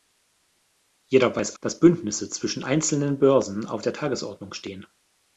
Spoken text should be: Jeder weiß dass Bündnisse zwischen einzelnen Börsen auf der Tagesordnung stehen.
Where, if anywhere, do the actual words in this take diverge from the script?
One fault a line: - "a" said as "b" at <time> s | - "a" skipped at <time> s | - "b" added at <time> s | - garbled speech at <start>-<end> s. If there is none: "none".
none